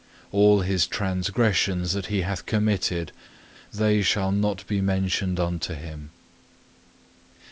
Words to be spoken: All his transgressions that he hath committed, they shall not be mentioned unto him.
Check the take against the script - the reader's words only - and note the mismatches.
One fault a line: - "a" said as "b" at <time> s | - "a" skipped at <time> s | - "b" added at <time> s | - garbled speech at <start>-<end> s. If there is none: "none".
none